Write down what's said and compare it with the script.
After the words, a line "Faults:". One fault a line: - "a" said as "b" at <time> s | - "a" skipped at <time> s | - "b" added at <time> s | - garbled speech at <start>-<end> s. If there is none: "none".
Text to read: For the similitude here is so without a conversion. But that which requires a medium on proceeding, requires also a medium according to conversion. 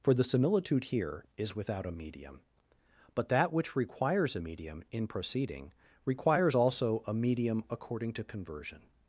For the similitude here is without a medium. But that which requires a medium in proceeding, requires also a medium according to conversion.
Faults:
- "so" skipped at 1.6 s
- "conversion" said as "medium" at 1.9 s
- "on" said as "in" at 4.9 s